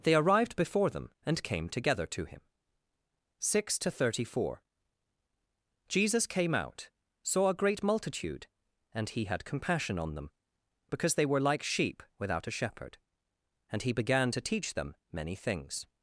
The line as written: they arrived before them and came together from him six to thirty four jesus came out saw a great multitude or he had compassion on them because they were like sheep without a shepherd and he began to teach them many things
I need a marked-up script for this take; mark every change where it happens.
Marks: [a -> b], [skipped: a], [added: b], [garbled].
they arrived before them and came together [from -> to] him six to thirty four jesus came out saw a great multitude [or -> and] he had compassion on them because they were like sheep without a shepherd and he began to teach them many things